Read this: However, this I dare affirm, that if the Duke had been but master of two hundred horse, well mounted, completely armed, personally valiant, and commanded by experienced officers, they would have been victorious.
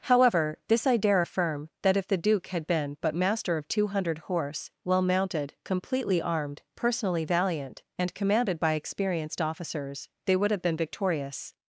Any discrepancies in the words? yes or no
no